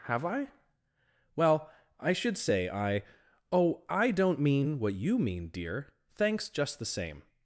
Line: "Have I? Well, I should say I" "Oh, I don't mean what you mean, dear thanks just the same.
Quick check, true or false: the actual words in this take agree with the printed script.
true